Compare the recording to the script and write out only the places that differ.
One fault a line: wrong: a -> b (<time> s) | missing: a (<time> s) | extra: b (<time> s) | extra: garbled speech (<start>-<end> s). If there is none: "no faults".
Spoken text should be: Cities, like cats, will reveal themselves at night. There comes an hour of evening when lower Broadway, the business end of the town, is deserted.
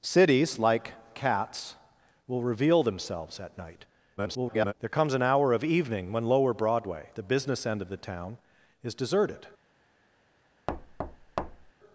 extra: garbled speech (4.2-4.7 s)